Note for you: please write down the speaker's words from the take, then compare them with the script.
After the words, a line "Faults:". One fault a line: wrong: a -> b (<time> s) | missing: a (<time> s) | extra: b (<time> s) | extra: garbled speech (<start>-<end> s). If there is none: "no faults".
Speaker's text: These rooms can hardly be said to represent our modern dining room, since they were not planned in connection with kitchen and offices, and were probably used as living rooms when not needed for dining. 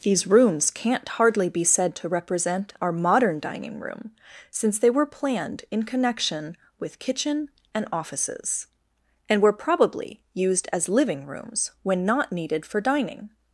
These rooms can't hardly be said to represent our modern dining room, since they were planned in connection with kitchen and offices, and were probably used as living rooms when not needed for dining.
Faults:
wrong: can -> can't (0.7 s)
missing: not (5.0 s)